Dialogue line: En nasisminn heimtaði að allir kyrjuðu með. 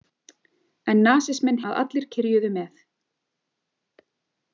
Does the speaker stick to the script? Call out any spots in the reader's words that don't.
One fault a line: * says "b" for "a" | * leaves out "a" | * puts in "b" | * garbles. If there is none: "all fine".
* leaves out "heimtaði"